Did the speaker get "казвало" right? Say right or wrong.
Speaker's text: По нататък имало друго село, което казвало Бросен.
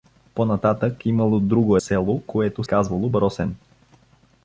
right